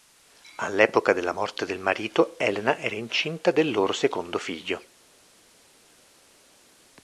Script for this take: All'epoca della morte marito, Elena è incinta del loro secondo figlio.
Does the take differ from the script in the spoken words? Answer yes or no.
yes